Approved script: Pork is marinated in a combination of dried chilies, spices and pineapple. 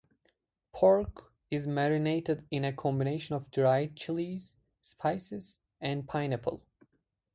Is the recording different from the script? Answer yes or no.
no